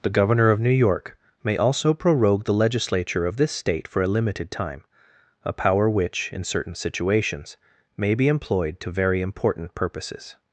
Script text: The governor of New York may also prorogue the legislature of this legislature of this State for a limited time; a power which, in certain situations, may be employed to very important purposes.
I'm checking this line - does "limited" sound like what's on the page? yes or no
yes